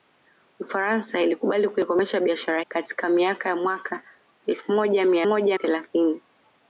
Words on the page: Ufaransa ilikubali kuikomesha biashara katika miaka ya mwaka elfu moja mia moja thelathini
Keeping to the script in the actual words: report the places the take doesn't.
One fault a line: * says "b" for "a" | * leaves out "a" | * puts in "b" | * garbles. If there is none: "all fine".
all fine